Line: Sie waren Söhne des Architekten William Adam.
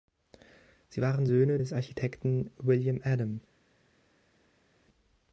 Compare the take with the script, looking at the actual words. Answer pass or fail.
pass